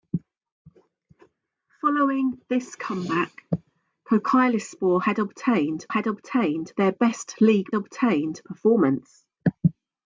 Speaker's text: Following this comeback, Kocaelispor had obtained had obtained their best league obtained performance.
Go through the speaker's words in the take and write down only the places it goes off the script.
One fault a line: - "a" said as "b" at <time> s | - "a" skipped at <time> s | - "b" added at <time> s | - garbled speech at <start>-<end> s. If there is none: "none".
none